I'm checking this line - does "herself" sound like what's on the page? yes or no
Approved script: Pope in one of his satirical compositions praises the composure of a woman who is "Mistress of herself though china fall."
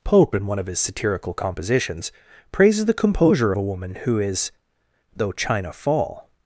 no